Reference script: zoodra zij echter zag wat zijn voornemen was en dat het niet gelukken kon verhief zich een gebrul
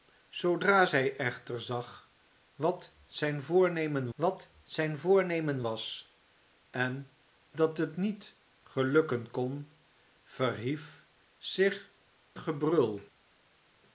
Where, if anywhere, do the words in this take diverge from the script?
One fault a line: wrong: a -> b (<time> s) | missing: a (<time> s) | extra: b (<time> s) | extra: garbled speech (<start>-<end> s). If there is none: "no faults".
extra: wat zijn voornemen (4.1 s)
missing: een (11.9 s)